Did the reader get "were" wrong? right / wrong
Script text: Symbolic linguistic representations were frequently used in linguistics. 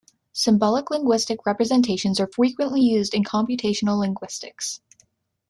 wrong